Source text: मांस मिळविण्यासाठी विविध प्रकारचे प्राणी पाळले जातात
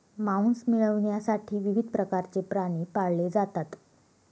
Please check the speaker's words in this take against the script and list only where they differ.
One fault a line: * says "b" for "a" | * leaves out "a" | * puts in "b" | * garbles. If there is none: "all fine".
all fine